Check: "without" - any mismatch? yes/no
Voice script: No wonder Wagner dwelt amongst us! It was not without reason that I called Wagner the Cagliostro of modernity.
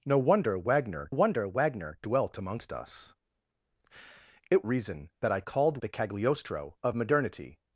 yes